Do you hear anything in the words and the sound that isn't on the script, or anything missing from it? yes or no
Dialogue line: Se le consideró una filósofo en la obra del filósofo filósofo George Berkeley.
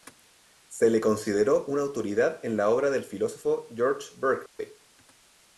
yes